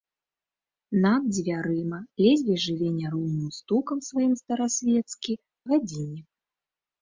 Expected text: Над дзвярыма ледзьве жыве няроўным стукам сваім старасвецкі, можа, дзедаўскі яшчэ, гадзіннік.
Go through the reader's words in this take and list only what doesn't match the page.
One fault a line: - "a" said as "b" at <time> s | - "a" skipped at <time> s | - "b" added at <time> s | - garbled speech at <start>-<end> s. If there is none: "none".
- "можа дзедаўскі яшчэ" skipped at 5.3 s